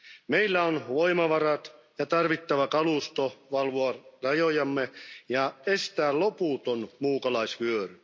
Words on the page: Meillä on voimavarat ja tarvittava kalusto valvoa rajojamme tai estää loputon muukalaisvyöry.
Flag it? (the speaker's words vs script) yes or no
yes